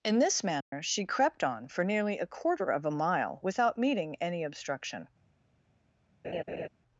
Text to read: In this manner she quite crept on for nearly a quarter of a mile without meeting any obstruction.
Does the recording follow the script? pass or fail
fail